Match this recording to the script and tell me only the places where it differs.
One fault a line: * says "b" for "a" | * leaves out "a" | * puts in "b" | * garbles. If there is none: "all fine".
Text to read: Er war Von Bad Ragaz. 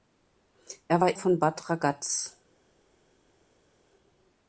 all fine